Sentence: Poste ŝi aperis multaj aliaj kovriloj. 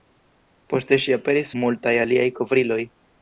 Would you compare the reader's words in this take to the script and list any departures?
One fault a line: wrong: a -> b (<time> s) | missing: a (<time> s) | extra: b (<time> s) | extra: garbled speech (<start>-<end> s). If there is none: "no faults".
no faults